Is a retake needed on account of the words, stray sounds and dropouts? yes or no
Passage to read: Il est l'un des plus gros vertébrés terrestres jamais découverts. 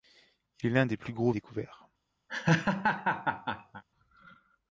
yes